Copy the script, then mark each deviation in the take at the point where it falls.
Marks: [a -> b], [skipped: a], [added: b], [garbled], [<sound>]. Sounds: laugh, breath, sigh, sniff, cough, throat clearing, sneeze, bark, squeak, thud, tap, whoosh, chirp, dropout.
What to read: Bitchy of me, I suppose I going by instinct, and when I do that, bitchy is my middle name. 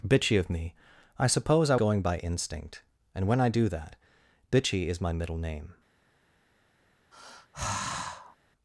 Bitchy of me, I suppose I going by instinct, and when I do that, bitchy is my middle name. [sigh]